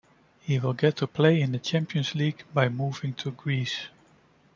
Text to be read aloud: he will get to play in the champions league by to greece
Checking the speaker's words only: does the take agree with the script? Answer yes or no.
no